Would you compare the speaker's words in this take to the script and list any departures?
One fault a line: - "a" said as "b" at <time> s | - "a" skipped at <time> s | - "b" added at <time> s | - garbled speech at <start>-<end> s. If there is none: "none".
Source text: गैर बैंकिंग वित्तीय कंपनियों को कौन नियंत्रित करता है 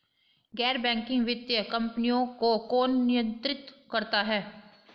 none